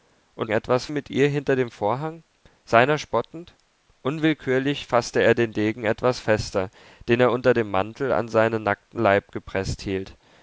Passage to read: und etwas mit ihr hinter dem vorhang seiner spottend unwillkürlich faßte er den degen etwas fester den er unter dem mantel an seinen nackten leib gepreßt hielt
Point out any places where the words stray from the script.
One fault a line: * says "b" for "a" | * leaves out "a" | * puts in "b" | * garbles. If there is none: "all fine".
all fine